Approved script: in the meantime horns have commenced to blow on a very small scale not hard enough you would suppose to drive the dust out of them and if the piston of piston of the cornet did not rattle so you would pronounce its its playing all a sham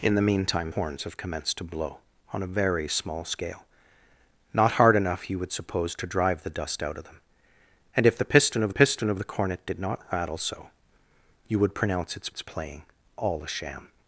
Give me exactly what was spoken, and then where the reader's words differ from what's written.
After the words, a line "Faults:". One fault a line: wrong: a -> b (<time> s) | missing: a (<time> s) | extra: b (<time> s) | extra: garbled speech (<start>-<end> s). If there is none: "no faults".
in the meantime horns have commenced to blow on a very small scale not hard enough you would suppose to drive the dust out of them and if the piston of piston of the cornet did not rattle so you would pronounce its its playing all a sham
Faults:
no faults